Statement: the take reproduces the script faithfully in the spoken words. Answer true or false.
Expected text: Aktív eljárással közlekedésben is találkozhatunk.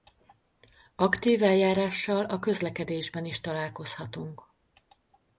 false